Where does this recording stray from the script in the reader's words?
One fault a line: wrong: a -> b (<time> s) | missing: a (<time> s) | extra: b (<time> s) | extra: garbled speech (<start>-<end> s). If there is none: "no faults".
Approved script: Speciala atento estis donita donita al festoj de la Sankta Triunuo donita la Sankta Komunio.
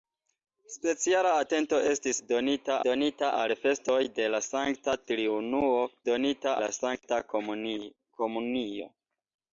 no faults